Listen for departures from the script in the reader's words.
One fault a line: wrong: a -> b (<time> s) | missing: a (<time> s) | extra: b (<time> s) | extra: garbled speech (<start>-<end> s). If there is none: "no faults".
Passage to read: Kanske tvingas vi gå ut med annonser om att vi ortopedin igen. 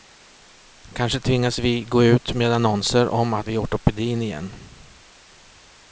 no faults